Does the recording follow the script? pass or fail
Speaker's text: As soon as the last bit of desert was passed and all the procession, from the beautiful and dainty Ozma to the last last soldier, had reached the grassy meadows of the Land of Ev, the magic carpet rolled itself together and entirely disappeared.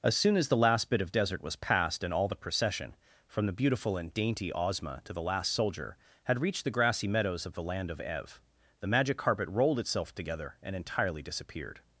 fail